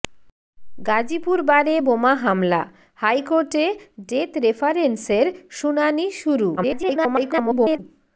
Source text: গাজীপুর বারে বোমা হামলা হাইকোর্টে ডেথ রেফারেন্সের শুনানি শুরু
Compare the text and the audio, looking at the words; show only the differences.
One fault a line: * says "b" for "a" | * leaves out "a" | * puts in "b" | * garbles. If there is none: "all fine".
* garbles